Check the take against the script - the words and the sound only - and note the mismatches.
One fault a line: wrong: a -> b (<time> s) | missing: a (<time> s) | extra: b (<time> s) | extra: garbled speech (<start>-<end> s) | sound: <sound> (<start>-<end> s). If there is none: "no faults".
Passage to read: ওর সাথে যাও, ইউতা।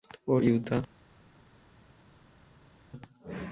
missing: সাথে যাও (0.4 s)